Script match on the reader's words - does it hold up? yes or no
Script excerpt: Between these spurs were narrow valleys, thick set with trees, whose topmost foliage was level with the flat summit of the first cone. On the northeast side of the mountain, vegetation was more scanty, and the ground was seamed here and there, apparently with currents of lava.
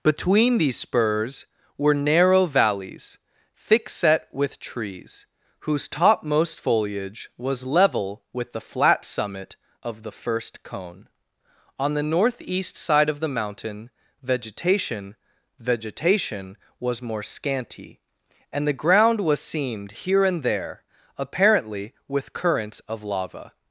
no